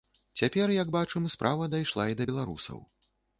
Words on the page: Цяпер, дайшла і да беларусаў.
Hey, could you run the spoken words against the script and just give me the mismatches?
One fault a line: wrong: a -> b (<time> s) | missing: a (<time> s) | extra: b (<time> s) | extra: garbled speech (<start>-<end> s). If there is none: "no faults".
extra: як бачым справа (0.8 s)